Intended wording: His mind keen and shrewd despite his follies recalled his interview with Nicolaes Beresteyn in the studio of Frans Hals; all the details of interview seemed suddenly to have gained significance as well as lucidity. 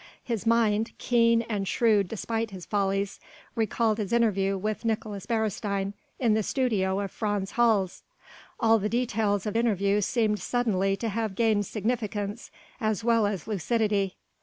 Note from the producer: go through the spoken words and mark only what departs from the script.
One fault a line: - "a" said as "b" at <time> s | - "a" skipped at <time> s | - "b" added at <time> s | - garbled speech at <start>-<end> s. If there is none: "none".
none